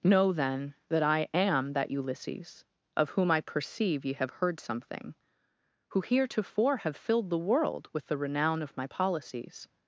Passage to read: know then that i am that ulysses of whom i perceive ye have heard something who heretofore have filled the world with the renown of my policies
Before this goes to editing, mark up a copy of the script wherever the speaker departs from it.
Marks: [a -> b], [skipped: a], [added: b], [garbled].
know then that i am that ulysses of whom i perceive ye have heard something who heretofore have filled the world with the renown of my policies